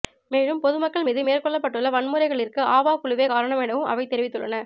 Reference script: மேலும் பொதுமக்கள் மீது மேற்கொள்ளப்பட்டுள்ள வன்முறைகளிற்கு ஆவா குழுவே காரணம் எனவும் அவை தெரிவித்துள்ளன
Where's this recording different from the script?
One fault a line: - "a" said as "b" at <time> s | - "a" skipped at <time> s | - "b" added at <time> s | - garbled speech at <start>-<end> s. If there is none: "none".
none